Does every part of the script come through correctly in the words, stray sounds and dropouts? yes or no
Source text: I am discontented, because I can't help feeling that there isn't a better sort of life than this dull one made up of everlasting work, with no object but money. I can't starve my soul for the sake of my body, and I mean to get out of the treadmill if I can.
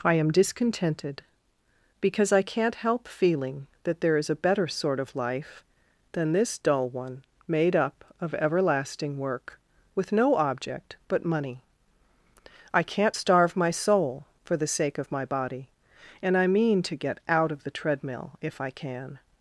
no